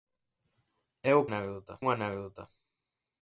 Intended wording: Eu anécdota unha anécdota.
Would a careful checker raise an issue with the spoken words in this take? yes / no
no